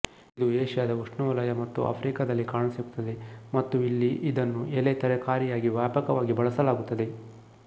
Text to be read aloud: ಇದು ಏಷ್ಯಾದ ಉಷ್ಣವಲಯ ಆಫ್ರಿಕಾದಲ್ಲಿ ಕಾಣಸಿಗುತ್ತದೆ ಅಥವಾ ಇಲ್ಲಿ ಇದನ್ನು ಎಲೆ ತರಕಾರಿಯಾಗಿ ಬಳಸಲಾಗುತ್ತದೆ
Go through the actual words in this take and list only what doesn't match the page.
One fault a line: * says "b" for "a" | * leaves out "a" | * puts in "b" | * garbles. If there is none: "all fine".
* puts in "ಮತ್ತು"
* says "ಮತ್ತು" for "ಅಥವಾ"
* puts in "ವ್ಯಾಪಕವಾಗಿ"